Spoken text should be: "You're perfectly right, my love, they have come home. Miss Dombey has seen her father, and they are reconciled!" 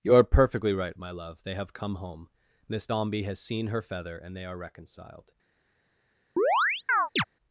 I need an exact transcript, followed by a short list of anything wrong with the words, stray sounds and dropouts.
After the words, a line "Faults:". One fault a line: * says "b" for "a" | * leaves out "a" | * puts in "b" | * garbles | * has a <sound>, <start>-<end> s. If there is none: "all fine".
"You're perfectly right, my love, they have come home. Miss Dombey has seen her feather, and they are reconciled!"
Faults:
* says "feather" for "father"
* has a chirp, 6.4-7.2 s